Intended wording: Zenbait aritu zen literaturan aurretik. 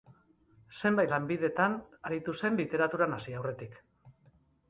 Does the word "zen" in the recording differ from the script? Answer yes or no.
no